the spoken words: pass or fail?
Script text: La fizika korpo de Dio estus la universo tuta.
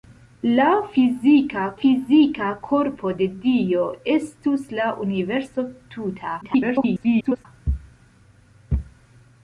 fail